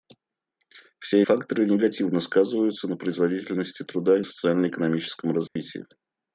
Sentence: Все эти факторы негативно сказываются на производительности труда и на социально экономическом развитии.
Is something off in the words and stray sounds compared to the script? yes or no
yes